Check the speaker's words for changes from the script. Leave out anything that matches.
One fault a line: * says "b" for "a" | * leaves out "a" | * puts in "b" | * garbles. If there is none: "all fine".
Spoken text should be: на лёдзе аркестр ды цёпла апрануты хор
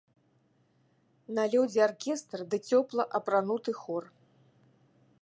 all fine